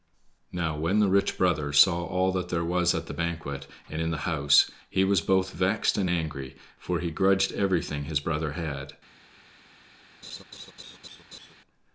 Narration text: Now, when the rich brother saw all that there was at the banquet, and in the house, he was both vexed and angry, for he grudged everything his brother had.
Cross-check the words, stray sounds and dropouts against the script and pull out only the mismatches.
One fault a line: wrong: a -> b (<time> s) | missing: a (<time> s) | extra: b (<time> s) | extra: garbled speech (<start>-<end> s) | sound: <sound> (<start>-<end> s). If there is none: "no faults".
sound: laugh (10.2-11.5 s)